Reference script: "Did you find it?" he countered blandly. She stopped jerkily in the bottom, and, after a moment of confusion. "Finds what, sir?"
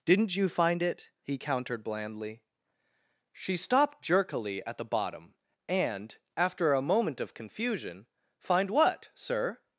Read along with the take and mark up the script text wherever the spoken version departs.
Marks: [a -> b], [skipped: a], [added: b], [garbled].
["Did -> Didn't] you find it?" he countered blandly. She stopped jerkily [in -> at] the bottom, and, after a moment of confusion. ["Finds -> Find] what, sir?"